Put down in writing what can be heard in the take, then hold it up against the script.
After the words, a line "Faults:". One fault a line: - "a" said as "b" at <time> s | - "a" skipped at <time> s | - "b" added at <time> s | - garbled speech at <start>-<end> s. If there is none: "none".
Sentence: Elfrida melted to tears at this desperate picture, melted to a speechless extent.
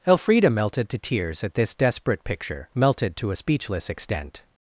Elfrida melted to tears at this desperate picture, melted to a speechless extent.
Faults:
none